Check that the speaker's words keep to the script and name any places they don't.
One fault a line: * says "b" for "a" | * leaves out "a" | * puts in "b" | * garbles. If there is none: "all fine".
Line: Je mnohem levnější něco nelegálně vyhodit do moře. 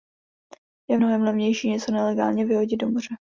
all fine